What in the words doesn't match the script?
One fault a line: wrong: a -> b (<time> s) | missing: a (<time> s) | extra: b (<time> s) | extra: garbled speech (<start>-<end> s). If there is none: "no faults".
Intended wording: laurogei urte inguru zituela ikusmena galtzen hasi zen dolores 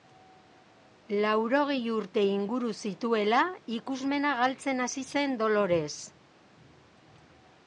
no faults